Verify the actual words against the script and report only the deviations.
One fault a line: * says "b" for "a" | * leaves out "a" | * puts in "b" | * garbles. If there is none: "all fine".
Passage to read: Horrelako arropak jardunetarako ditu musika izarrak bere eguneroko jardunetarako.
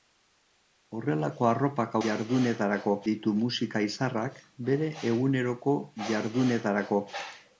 all fine